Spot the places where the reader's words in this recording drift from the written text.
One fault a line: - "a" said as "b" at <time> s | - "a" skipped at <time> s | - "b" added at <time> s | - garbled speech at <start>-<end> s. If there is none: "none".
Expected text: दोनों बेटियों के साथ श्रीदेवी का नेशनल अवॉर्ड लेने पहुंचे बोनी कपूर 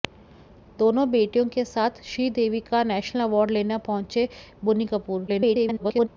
- garbled speech at 5.3-6.1 s